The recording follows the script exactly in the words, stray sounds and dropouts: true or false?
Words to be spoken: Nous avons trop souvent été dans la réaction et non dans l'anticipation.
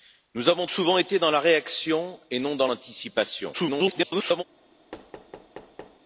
false